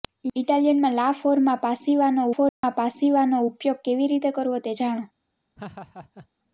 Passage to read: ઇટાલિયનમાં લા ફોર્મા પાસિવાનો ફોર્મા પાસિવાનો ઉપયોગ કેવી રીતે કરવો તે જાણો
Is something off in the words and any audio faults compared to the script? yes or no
yes